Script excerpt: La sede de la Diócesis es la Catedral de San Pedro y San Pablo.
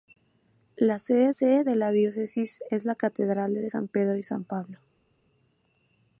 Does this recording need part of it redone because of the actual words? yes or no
yes